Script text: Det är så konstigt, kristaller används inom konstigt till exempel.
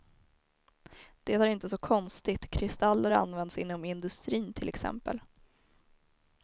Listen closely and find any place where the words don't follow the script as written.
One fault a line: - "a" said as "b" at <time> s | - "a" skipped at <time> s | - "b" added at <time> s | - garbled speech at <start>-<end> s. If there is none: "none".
- "inte" added at 1.5 s
- "konstigt" said as "industrin" at 3.8 s